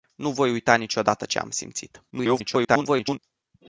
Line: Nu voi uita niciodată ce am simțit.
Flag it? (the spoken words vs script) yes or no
yes